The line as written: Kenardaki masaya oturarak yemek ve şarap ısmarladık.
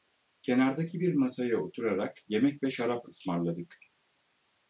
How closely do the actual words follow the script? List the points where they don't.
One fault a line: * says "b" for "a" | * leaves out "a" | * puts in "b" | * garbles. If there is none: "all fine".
* puts in "bir"